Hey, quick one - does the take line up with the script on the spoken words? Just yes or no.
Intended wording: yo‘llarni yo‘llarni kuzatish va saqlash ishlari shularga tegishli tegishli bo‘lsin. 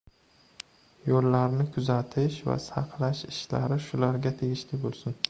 no